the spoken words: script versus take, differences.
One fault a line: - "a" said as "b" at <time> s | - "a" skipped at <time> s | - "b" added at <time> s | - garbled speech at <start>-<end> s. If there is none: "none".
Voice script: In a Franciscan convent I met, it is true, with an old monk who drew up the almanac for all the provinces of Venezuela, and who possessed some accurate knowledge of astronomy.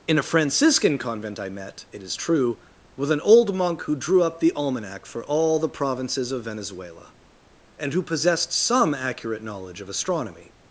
none